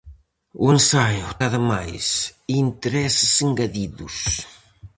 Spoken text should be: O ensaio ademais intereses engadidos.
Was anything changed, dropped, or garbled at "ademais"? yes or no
no